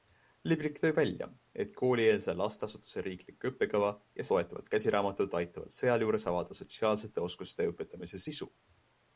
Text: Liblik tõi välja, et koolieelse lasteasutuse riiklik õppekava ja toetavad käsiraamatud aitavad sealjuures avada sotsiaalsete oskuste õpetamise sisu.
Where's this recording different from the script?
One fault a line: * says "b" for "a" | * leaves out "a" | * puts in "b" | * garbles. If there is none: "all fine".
all fine